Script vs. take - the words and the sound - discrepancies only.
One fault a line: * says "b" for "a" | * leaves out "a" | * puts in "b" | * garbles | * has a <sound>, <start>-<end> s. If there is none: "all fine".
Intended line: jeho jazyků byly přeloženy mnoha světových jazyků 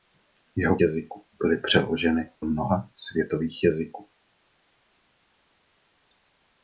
all fine